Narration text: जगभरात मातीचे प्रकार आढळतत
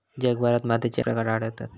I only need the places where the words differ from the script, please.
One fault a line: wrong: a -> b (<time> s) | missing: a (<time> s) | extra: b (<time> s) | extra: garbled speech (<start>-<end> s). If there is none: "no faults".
no faults